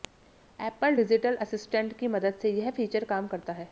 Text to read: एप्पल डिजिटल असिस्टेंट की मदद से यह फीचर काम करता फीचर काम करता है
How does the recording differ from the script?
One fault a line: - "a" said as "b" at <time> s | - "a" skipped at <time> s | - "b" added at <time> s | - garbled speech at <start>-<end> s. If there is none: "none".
- "फीचर काम करता" skipped at 3.5 s